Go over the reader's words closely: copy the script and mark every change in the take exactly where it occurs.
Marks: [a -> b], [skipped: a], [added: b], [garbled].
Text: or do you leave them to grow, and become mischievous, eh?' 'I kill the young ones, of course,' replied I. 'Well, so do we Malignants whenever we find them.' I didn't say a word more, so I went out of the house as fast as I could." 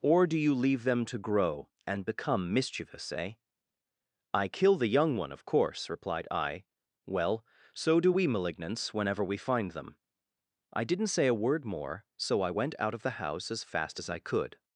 or do you leave them to grow, and become mischievous, eh?' 'I kill the young [ones, -> one] of course,' replied I. 'Well, so do we Malignants whenever we find them.' I didn't say a word more, so I went out of the house as fast as I could."